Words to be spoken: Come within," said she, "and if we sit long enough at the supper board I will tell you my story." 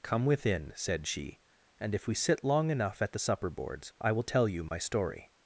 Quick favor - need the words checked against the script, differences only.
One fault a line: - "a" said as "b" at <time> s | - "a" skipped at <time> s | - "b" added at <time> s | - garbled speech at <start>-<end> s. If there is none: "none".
- "board" said as "boards" at 3.5 s